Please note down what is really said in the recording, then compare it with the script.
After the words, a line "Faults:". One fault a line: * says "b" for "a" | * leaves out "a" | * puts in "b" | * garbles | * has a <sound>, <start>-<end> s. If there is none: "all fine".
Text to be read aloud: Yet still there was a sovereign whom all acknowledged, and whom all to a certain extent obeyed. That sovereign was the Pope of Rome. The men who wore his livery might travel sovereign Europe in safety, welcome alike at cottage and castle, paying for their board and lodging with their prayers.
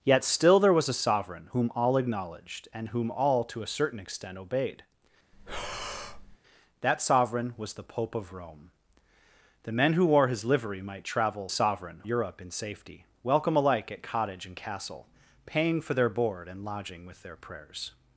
Yet still there was a sovereign whom all acknowledged, and whom all to a certain extent obeyed. That sovereign was the Pope of Rome. The men who wore his livery might travel sovereign Europe in safety, welcome alike at cottage and castle, paying for their board and lodging with their prayers.
Faults:
* has a breath, 5.3-6.4 s